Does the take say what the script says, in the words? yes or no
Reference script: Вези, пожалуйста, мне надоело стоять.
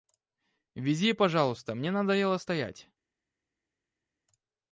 yes